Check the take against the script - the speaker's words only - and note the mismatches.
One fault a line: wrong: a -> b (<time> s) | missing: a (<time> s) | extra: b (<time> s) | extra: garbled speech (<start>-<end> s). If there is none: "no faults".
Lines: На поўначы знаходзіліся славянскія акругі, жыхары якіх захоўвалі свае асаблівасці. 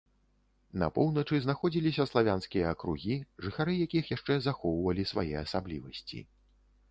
extra: яшчэ (4.1 s)